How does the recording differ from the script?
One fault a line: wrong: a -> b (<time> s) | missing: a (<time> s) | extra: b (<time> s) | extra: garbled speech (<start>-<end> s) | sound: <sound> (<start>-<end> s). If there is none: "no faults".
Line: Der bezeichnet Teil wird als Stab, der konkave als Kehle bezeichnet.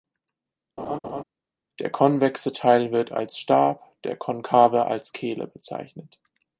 sound: laugh (0.8-1.2 s)
wrong: bezeichnet -> konvexe (1.9 s)